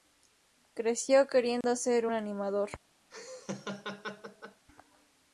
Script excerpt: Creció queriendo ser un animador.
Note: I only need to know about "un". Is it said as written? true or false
false